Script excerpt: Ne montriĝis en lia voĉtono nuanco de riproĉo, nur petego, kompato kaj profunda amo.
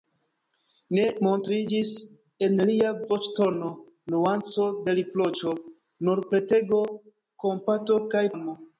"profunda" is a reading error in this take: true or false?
true